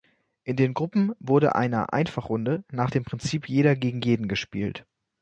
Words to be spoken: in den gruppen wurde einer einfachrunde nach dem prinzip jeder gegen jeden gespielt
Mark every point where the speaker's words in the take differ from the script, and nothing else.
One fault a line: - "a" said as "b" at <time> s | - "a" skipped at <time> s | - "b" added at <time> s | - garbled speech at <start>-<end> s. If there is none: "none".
none